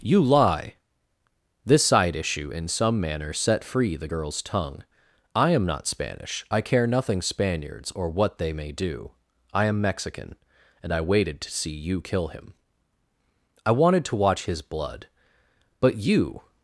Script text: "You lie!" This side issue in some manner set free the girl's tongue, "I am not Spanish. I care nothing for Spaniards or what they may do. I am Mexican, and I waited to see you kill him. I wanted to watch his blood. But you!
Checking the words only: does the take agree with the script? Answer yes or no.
no